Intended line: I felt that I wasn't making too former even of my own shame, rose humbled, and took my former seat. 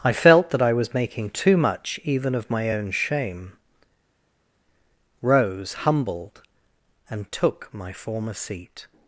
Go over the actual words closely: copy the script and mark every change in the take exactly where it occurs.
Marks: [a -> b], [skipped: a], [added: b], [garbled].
I felt that I [wasn't -> was] making too [former -> much] even of my own shame, rose humbled, and took my former seat.